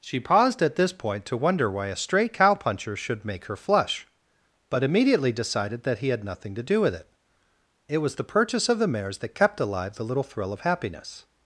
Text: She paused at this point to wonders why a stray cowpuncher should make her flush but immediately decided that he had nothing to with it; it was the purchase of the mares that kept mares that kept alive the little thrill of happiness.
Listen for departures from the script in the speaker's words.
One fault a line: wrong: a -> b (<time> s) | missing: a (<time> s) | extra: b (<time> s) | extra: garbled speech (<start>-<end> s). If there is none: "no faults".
wrong: wonders -> wonder (1.4 s)
extra: do (6.6 s)
missing: mares that kept (9.6 s)